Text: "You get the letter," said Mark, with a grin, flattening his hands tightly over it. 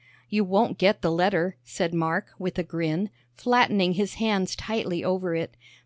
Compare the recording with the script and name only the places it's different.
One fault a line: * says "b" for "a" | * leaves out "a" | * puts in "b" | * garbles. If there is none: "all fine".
* puts in "won't"